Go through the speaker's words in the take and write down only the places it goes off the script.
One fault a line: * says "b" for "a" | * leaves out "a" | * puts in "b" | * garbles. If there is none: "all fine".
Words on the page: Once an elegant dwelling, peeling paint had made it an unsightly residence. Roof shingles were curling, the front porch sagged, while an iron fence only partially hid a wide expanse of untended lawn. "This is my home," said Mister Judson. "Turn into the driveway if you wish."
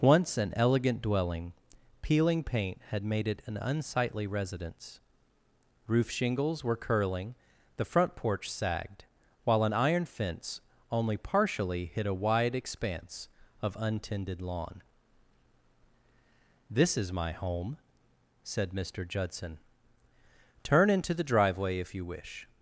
all fine